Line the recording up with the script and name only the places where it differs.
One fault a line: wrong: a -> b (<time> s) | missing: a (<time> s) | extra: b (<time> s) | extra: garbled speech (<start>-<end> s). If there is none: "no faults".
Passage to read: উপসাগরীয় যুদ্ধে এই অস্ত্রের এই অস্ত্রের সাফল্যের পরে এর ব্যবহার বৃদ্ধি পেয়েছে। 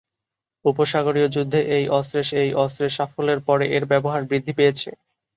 no faults